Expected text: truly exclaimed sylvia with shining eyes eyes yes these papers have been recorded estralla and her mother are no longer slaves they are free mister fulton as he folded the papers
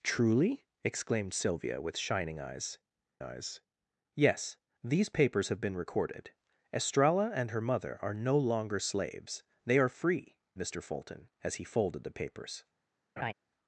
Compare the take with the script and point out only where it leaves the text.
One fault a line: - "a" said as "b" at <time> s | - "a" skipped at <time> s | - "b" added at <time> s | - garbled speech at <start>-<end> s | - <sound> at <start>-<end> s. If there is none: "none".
- laugh at 13.2-13.3 s